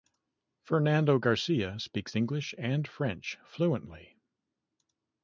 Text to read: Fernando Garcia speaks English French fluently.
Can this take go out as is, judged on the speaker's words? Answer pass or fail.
fail